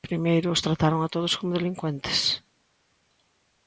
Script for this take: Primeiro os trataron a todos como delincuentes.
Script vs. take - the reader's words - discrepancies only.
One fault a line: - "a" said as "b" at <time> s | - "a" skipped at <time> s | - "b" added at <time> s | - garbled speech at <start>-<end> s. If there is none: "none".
none